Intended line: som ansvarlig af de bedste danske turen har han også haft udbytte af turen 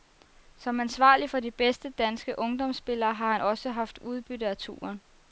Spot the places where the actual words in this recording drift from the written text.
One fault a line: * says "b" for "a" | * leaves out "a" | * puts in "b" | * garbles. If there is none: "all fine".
* says "for" for "af"
* says "ungdomsspillere" for "turen"